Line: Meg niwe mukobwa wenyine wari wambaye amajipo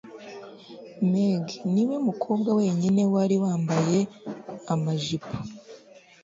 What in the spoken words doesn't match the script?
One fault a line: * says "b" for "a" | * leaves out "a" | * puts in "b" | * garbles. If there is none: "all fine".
all fine